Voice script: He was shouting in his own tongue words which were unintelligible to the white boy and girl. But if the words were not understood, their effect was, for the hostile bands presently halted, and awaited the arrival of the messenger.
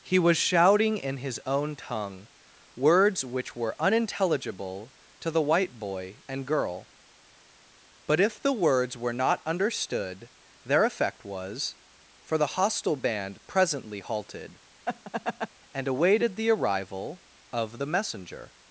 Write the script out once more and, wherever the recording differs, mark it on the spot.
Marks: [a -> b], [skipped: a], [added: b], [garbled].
He was shouting in his own tongue words which were unintelligible to the white boy and girl. But if the words were not understood, their effect was, for the hostile [bands -> band] presently halted, and awaited the arrival of the messenger.